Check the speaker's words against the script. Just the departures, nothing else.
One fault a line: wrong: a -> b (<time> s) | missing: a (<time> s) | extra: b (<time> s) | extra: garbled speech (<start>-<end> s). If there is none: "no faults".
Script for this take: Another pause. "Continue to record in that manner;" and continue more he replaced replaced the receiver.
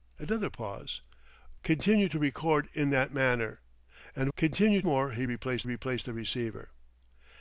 no faults